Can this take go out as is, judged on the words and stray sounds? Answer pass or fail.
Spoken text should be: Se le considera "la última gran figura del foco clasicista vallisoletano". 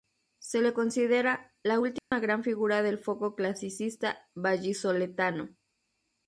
fail